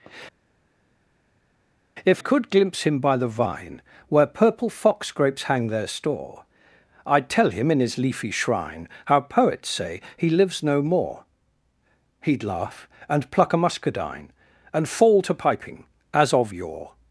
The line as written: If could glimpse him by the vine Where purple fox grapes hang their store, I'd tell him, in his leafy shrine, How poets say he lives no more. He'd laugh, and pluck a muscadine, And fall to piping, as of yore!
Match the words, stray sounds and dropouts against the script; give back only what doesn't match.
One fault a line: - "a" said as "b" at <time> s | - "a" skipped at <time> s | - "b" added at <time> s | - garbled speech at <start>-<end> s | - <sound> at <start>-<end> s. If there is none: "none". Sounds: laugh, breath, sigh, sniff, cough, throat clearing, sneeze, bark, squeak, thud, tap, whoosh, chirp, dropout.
none